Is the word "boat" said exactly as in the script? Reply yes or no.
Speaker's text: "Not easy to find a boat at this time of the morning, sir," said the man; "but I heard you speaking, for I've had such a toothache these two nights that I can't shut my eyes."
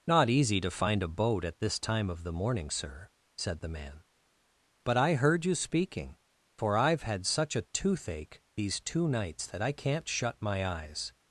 yes